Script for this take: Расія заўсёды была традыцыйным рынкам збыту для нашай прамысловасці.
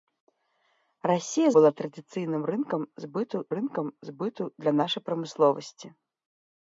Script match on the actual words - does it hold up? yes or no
no